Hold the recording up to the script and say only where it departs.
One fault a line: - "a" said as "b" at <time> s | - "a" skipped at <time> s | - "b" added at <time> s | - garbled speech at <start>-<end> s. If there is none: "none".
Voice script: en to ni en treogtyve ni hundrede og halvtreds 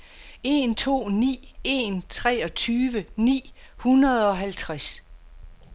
none